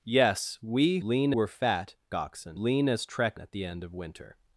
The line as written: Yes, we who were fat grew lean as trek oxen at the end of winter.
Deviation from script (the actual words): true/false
true